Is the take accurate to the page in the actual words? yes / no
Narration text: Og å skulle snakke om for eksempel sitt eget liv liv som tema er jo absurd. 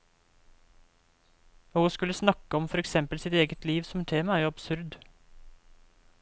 no